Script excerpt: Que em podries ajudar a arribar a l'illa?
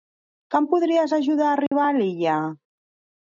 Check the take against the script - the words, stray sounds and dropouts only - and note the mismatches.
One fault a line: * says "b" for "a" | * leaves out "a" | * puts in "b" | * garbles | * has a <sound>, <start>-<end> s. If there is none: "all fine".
* has a dropout, 1.7-1.7 s